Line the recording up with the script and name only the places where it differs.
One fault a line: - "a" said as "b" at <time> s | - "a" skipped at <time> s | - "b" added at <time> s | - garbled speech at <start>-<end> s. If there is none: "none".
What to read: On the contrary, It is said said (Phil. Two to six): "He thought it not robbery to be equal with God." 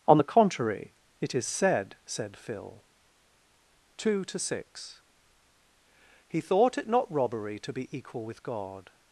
none